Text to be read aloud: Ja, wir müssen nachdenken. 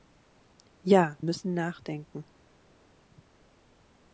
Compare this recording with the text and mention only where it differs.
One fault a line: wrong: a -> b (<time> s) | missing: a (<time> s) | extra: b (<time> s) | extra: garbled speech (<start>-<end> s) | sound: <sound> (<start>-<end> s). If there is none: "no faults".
missing: wir (1.1 s)